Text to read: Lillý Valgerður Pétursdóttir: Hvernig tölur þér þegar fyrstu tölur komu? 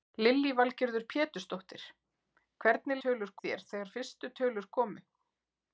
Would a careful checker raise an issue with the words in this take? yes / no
no